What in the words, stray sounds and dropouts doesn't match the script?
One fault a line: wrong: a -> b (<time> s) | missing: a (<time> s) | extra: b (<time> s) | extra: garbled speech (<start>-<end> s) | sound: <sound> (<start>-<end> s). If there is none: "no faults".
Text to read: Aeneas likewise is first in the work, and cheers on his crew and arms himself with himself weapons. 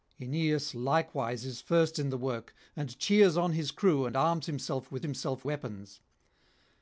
no faults